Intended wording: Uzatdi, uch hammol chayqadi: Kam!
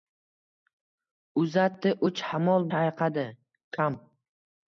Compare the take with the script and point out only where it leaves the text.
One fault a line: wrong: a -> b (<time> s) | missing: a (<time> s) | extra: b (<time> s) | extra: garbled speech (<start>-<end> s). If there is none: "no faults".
no faults